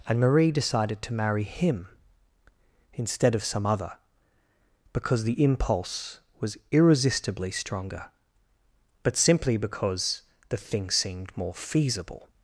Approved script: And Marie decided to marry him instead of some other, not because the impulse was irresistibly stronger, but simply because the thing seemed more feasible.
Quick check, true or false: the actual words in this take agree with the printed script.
false